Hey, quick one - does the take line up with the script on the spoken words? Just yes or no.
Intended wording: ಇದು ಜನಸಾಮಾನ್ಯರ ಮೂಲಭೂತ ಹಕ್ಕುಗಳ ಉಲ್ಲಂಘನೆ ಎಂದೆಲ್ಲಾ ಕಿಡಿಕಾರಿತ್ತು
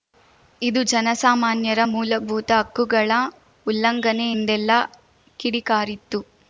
yes